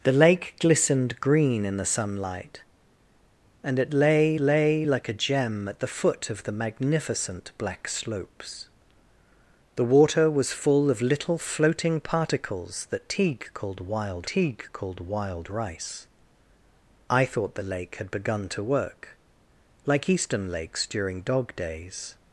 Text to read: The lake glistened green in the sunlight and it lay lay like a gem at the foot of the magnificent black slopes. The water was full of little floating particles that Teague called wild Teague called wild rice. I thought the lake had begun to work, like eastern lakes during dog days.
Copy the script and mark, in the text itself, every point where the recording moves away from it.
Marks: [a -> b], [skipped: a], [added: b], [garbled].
The lake glistened green in the sunlight and it lay lay like a gem at the foot of the magnificent black slopes. The water was full of little floating particles that Teague called wild Teague called wild rice. I thought the lake had begun to work, like eastern lakes during dog days.